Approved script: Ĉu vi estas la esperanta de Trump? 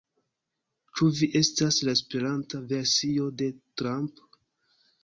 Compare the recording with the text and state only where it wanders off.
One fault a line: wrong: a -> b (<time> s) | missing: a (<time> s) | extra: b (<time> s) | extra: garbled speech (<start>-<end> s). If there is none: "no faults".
extra: versio (2.7 s)